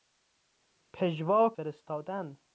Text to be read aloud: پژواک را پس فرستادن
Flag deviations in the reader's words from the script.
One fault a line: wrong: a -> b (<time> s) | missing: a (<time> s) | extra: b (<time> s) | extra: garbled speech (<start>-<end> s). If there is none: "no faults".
missing: را پس (1.5 s)